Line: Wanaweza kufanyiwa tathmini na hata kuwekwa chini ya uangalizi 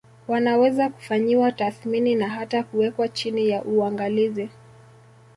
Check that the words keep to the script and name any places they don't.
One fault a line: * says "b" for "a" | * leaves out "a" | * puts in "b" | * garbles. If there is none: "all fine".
all fine